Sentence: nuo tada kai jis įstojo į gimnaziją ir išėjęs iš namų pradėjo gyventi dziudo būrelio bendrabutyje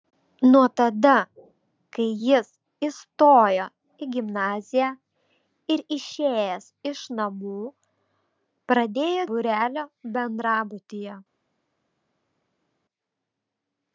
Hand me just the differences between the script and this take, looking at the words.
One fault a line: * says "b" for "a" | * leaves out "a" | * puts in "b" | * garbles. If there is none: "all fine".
* leaves out "gyventi dziudo"